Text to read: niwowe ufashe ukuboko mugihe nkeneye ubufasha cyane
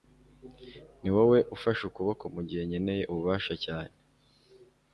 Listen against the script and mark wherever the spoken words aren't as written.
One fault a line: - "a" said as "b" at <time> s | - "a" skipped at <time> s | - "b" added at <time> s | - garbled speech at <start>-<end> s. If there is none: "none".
none